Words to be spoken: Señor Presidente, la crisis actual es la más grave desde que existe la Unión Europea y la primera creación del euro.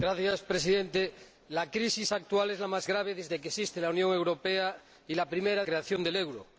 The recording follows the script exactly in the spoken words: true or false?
true